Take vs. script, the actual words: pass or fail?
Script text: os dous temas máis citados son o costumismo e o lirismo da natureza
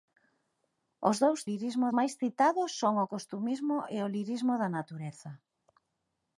fail